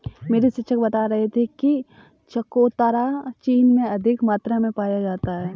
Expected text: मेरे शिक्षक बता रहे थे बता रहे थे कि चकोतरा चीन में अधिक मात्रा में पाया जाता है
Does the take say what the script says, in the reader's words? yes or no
no